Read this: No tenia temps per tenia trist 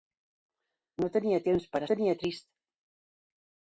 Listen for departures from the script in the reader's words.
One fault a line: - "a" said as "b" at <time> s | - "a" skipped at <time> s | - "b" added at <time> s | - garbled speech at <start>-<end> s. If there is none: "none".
none